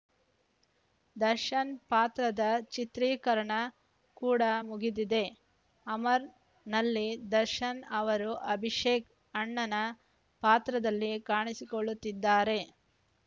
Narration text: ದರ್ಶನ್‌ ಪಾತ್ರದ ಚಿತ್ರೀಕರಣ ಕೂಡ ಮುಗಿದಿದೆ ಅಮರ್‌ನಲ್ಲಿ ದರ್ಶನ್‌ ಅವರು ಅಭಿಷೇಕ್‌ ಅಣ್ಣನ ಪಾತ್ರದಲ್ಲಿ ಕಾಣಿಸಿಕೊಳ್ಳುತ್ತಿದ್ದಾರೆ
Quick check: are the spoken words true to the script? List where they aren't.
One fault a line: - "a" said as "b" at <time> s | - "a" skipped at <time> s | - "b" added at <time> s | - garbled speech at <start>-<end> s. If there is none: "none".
none